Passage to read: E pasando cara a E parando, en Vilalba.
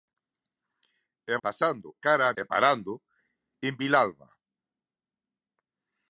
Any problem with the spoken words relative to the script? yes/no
no